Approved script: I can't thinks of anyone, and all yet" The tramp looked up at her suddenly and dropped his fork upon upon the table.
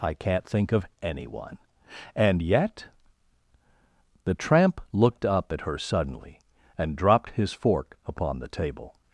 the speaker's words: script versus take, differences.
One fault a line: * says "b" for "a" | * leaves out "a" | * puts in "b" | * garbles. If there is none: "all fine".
* says "think" for "thinks"
* leaves out "all"
* leaves out "upon"